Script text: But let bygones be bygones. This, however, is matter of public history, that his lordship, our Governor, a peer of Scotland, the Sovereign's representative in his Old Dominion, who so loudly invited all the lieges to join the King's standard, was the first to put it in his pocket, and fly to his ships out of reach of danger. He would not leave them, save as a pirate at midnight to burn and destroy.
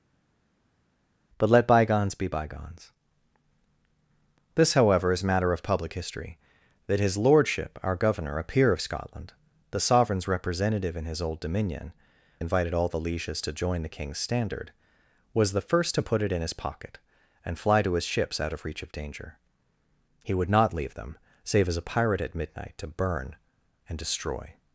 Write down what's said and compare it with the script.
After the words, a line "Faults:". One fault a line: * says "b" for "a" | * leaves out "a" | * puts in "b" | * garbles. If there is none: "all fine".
But let bygones be bygones. This, however, is matter of public history, that his lordship, our Governor, a peer of Scotland, the Sovereign's representative in his Old Dominion, invited all the lieges to join the King's standard, was the first to put it in his pocket, and fly to his ships out of reach of danger. He would not leave them, save as a pirate at midnight to burn and destroy.
Faults:
* leaves out "who so loudly"